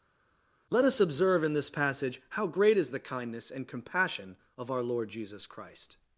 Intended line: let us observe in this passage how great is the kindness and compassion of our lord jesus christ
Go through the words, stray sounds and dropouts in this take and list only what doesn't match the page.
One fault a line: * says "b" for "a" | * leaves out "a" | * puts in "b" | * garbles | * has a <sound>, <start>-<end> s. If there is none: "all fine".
all fine